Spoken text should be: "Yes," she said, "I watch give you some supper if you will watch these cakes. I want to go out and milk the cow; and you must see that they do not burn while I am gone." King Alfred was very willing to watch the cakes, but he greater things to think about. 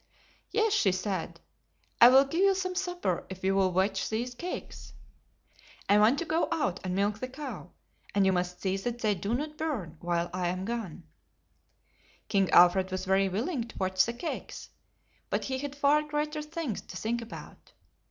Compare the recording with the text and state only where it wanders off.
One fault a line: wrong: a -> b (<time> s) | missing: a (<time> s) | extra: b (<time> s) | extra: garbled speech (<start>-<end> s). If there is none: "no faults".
wrong: watch -> will (2.1 s)
extra: had far (15.6 s)